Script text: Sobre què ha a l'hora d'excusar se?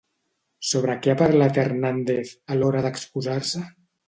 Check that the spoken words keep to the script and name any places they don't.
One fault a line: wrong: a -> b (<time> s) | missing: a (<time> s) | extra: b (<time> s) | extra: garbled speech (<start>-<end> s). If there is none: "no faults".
extra: parlat Hernández (1.2 s)